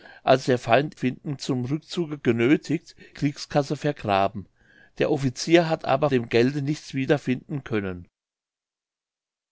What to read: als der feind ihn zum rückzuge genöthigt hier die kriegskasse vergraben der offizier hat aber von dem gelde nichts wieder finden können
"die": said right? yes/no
no